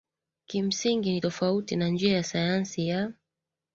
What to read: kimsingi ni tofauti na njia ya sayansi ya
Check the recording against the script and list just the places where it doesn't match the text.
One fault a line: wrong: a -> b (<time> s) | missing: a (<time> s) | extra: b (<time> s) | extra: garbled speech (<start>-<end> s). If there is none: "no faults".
no faults